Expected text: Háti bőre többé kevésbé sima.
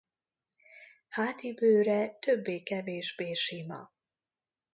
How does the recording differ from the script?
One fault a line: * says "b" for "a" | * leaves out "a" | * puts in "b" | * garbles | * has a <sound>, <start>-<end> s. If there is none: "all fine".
all fine